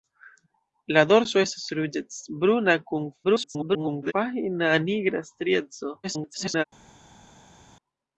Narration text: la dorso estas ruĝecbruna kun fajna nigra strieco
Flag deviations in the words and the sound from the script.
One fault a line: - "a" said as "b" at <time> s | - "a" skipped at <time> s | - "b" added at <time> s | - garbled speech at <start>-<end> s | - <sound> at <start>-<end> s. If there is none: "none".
- garbled speech at 3.2-4.1 s
- garbled speech at 6.0-6.6 s